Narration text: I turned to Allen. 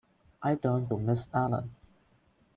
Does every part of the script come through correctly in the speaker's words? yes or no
no